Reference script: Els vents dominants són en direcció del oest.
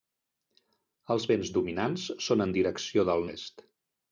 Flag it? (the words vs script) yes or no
no